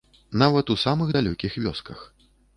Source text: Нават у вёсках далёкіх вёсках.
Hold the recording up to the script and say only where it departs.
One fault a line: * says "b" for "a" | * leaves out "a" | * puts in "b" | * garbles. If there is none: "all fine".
* says "самых" for "вёсках"